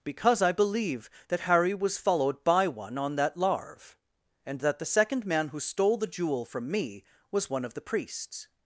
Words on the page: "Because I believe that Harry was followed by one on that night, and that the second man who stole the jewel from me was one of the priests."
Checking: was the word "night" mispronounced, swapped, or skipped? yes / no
yes